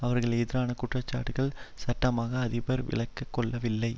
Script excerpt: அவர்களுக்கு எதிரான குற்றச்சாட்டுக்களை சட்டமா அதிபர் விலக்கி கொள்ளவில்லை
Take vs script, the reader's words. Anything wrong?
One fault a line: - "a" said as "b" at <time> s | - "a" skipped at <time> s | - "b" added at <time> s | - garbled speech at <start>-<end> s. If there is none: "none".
none